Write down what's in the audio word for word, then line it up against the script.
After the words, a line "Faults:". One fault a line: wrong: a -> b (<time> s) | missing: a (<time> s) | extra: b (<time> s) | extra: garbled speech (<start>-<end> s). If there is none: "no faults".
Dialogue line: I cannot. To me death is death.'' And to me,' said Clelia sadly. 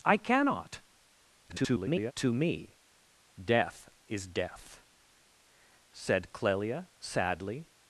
I cannot. [garbled] To me death is death,' Said Clelia sadly.
Faults:
extra: garbled speech (1.5-2.1 s)
missing: And to me (4.8 s)